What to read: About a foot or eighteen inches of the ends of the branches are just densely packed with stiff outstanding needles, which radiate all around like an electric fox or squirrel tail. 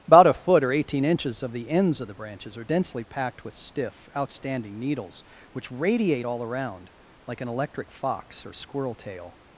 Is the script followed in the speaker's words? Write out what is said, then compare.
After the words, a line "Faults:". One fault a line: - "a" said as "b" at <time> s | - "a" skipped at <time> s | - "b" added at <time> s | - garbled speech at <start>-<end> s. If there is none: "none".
About a foot or eighteen inches of the ends of the branches are densely packed with stiff outstanding needles, which radiate all around like an electric fox or squirrel tail.
Faults:
- "just" skipped at 2.6 s